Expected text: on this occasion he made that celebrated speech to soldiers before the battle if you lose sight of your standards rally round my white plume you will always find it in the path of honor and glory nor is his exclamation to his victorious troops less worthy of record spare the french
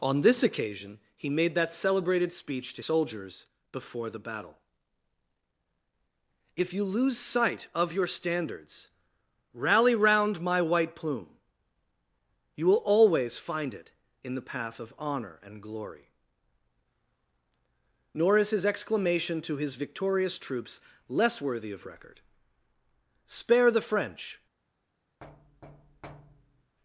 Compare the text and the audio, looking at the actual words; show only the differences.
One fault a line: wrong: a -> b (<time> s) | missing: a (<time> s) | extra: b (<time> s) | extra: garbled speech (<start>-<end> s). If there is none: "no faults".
no faults